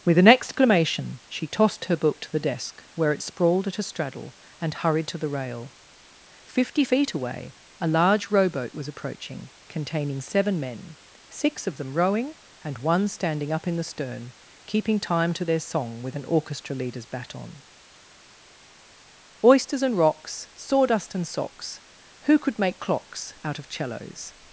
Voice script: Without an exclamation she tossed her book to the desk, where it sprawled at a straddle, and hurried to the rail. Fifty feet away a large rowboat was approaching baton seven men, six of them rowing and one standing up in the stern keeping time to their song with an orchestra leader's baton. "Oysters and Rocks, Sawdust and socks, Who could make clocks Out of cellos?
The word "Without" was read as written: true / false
false